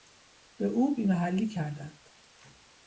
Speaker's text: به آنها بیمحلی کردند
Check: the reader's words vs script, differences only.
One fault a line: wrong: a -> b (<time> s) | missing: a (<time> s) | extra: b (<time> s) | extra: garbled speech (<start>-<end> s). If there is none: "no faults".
wrong: آنها -> او (0.7 s)